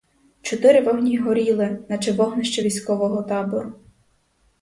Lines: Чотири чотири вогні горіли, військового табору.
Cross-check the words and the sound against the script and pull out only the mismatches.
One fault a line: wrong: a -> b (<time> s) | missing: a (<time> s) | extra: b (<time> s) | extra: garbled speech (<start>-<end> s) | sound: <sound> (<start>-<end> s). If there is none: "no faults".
missing: чотири (0.8 s)
extra: наче вогнище (1.9 s)